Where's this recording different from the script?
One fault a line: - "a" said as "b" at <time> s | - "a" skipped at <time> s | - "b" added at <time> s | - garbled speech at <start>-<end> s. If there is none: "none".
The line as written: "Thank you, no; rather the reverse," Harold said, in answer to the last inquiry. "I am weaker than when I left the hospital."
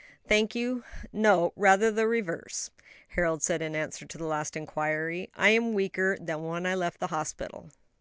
none